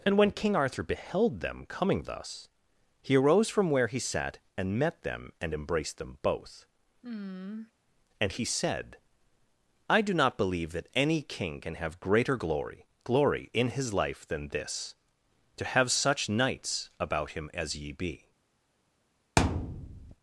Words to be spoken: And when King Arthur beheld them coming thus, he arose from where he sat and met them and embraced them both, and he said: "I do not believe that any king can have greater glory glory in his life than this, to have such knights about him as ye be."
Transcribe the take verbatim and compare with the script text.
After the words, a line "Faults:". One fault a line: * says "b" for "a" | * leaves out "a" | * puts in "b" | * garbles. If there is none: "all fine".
And when King Arthur beheld them coming thus, he arose from where he sat and met them and embraced them both, and he said: "I do not believe that any king can have greater glory glory in his life than this, to have such knights about him as ye be."
Faults:
all fine